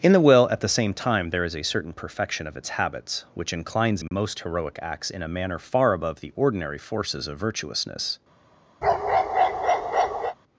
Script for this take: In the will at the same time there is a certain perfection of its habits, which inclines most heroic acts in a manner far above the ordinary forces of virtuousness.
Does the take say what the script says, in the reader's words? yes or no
yes